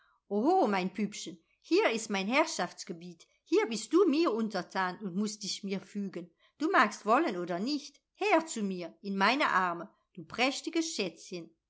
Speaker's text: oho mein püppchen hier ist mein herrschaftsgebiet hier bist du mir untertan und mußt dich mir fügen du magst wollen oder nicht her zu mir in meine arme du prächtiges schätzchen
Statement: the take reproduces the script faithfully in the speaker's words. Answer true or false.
true